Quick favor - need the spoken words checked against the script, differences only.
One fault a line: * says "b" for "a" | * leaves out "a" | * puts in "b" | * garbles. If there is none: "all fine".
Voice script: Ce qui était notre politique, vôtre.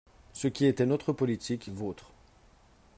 all fine